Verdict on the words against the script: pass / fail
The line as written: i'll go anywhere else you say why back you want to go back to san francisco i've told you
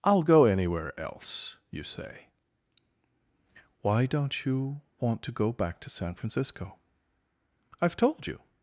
fail